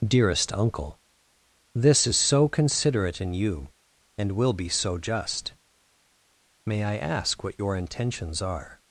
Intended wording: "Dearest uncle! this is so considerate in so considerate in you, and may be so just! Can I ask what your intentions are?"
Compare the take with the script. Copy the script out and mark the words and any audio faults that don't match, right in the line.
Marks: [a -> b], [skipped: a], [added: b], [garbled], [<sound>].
"Dearest uncle! this is so considerate in [skipped: so considerate in] you, and [may -> will] be so just! [Can -> May] I ask what your intentions are?"